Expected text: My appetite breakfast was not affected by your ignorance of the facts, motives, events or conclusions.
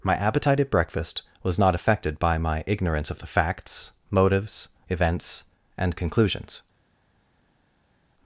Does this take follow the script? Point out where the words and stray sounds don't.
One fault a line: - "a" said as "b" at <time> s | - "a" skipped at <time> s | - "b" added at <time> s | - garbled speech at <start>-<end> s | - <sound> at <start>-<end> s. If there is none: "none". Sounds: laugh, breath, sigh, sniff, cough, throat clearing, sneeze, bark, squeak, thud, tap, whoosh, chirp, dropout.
- "at" added at 0.6 s
- "your" said as "my" at 2.4 s
- "or" said as "and" at 5.8 s